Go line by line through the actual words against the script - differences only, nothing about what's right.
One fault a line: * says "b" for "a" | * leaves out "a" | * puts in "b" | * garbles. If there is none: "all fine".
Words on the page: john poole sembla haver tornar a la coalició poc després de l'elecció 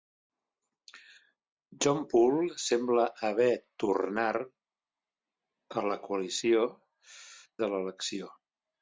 * leaves out "poc després"